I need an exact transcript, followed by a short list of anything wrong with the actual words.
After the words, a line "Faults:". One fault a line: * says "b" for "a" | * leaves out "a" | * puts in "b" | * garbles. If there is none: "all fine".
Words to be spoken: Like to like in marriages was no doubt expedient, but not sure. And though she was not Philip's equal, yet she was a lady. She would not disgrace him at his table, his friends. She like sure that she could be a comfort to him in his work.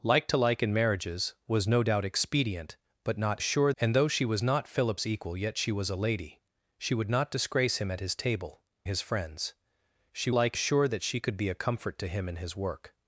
Like to like in marriages was no doubt expedient, but not sure. And though she was not Philip's equal, yet she was a lady. She would not disgrace him at his table, his friends. She like sure that she could be a comfort to him in his work.
Faults:
all fine